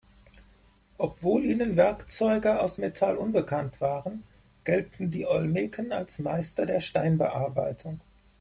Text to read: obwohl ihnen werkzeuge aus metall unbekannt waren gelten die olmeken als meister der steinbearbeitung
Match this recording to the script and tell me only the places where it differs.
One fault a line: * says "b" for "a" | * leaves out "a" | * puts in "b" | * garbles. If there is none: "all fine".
all fine